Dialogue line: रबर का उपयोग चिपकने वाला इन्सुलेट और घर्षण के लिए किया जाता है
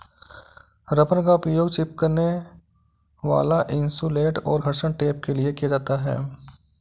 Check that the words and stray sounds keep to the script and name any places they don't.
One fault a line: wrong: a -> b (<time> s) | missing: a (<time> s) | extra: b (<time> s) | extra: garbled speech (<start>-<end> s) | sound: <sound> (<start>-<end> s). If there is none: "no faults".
extra: टेप (4.9 s)